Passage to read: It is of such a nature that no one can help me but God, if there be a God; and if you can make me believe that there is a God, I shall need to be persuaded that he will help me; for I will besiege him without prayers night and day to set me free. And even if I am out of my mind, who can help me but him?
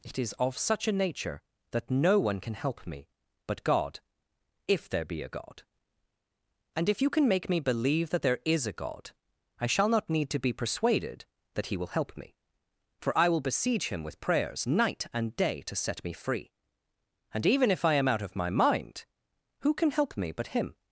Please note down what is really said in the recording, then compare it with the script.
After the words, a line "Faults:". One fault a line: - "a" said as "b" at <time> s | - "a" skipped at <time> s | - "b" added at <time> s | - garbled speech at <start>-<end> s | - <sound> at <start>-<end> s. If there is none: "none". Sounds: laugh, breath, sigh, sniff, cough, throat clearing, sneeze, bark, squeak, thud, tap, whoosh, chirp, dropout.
It is of such a nature that no one can help me but God, if there be a God; and if you can make me believe that there is a God, I shall not need to be persuaded that he will help me; for I will besiege him with prayers night and day to set me free. And even if I am out of my mind, who can help me but him?
Faults:
- "not" added at 9.9 s
- "without" said as "with" at 14.0 s